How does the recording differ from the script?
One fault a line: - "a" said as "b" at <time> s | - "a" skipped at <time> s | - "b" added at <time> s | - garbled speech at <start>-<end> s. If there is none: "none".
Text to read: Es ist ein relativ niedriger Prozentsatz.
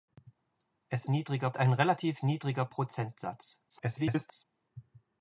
- "ist" said as "niedriger" at 1.1 s
- garbled speech at 3.7-4.4 s